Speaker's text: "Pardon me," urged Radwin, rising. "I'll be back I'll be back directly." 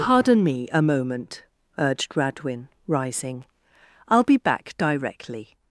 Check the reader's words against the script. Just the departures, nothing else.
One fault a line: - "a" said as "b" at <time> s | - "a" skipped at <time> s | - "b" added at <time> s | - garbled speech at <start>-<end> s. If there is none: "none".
- "a moment" added at 0.7 s
- "I'll be back" skipped at 4.8 s